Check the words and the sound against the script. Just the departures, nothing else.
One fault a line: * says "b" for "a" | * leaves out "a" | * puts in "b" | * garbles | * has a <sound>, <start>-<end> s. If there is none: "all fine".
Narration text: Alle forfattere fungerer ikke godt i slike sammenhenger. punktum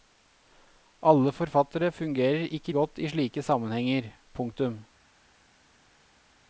all fine